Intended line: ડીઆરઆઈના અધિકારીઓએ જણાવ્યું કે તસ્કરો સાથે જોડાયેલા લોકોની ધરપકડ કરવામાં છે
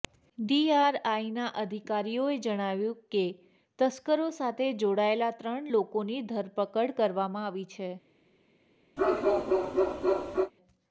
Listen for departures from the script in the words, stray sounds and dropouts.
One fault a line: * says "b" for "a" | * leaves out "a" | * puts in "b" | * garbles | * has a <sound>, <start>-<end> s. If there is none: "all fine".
* puts in "ત્રણ"
* puts in "આવી"
* has a bark, 9.0-10.5 s